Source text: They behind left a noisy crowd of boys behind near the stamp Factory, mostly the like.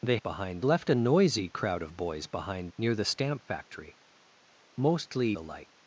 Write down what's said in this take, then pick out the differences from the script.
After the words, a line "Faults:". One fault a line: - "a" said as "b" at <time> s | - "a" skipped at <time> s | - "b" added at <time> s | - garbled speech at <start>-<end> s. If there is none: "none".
They behind left a noisy crowd of boys behind near the stamp Factory, mostly the like.
Faults:
none